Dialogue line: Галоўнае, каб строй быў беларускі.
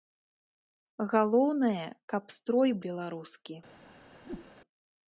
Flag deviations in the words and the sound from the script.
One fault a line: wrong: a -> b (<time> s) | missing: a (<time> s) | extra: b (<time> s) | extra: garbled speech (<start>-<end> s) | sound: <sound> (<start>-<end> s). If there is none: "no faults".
missing: быў (2.7 s)
sound: whoosh (4.2-4.5 s)